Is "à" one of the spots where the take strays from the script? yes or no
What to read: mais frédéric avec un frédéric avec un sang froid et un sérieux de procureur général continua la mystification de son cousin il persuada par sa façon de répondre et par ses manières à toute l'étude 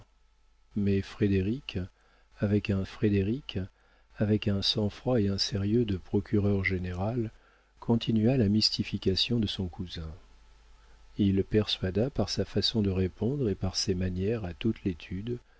no